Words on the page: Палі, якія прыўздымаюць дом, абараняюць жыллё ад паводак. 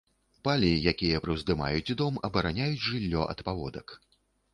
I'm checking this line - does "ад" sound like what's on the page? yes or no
yes